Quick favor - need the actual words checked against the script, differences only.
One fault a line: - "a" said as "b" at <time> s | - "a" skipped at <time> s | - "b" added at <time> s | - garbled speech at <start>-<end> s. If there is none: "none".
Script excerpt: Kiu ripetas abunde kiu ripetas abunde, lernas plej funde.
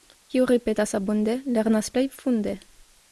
- "kiu ripetas abunde" skipped at 1.4 s